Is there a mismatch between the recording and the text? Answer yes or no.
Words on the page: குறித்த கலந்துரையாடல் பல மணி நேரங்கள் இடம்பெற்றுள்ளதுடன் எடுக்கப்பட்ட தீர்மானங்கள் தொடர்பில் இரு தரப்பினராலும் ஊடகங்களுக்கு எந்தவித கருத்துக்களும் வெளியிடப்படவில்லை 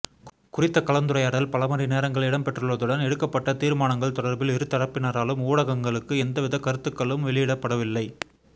no